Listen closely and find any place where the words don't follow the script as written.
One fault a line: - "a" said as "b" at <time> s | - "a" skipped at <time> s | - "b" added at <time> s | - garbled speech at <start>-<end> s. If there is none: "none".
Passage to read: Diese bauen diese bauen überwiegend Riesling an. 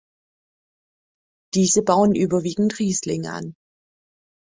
- "diese bauen" skipped at 2.1 s